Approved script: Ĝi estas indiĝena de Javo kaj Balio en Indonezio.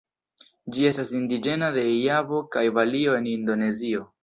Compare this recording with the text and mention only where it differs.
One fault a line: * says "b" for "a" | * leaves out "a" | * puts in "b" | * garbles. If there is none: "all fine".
all fine